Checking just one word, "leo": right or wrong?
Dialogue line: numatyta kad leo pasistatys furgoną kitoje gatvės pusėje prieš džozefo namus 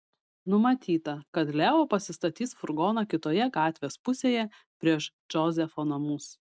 right